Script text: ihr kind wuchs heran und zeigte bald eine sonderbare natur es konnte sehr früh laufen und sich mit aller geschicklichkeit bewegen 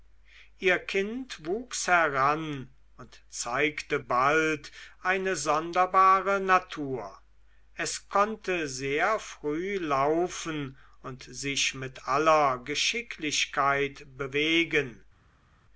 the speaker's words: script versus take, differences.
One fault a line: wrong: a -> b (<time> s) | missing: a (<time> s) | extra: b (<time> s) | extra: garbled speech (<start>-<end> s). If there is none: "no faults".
no faults